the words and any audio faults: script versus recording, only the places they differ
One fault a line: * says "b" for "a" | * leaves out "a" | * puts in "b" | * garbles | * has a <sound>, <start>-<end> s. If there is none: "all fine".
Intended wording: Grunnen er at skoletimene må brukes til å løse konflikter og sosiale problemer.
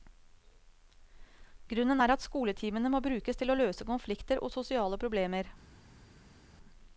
all fine